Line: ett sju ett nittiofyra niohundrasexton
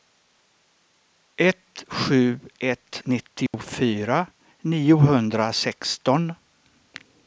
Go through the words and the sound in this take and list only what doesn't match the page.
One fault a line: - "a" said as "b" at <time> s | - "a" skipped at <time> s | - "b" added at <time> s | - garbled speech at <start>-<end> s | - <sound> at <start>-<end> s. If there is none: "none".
- dropout at 3.5-3.5 s